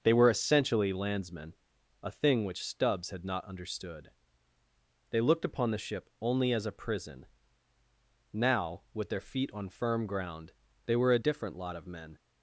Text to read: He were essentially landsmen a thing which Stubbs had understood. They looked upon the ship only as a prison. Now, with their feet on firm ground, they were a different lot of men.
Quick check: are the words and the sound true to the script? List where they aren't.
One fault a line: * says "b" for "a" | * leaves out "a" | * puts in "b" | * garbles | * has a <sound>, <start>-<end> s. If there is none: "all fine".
* says "They" for "He"
* puts in "not"